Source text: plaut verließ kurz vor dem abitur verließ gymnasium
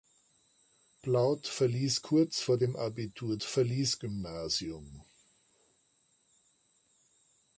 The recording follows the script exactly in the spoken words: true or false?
true